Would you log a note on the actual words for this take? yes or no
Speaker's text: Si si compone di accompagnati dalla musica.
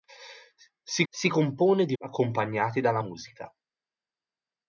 no